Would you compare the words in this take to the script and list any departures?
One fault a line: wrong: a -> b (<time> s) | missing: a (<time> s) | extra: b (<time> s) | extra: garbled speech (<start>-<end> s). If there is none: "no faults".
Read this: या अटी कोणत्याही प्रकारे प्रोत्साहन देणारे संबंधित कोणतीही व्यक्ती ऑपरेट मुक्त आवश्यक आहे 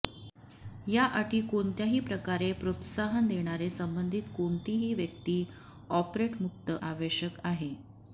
no faults